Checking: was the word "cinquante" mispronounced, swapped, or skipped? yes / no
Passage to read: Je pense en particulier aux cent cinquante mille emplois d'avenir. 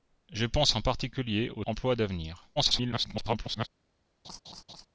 yes